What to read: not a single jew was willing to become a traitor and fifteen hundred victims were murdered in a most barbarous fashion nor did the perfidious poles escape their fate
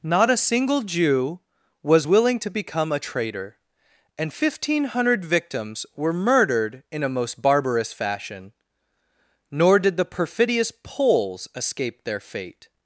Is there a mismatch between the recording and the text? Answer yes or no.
no